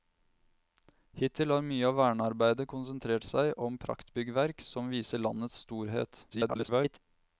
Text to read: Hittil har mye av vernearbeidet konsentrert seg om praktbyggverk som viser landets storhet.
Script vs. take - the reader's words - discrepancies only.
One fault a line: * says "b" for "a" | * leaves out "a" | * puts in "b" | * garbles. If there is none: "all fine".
* garbles